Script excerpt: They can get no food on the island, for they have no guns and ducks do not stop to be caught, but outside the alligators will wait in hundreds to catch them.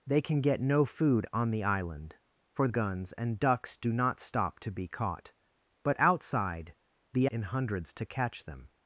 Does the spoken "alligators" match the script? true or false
false